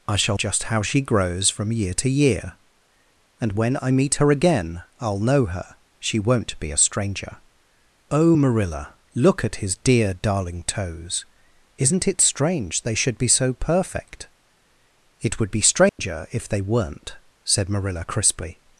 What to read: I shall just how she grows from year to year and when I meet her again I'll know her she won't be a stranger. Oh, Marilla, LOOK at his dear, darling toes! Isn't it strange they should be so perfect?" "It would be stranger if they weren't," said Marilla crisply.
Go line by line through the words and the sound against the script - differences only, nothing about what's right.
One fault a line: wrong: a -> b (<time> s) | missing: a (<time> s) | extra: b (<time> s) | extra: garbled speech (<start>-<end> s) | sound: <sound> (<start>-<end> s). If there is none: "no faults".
sound: dropout (15.9-16.0 s)